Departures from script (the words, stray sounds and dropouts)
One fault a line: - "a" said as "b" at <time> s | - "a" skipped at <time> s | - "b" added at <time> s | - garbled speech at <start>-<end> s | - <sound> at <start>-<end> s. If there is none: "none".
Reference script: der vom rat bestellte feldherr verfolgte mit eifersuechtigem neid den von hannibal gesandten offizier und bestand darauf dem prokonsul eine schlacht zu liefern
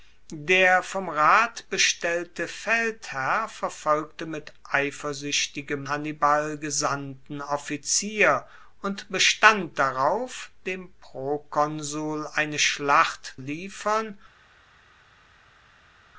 - "neid den von" skipped at 5.9 s
- "zu" skipped at 13.3 s